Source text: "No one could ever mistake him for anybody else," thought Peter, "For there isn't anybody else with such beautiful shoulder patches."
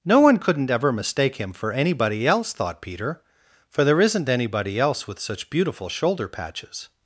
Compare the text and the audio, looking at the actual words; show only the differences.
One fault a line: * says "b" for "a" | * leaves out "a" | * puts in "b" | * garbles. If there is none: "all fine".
* says "couldn't" for "could"